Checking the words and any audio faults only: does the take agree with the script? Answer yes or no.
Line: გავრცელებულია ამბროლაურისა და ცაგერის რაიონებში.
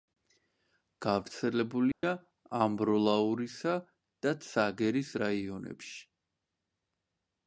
no